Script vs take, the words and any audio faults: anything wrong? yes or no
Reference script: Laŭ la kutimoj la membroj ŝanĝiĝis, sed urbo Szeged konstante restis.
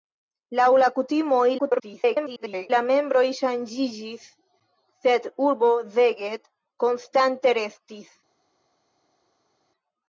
yes